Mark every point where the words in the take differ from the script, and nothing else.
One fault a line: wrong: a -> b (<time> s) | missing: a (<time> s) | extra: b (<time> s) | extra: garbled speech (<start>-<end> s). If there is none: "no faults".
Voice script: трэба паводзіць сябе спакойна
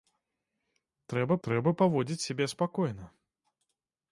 extra: трэба (1.5 s)